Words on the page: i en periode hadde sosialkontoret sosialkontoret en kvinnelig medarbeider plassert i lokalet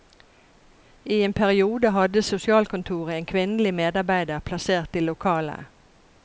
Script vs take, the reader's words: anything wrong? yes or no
yes